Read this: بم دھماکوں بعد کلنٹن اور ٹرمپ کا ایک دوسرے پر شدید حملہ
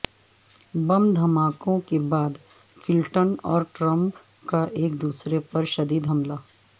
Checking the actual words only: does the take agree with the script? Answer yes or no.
no